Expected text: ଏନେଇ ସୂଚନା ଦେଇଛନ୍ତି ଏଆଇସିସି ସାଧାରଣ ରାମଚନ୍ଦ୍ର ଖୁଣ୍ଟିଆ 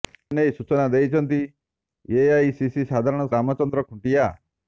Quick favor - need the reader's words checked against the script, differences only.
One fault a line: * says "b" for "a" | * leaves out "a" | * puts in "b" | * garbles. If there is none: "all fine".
all fine